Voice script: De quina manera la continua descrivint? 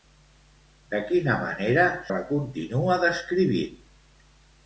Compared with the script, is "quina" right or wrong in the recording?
right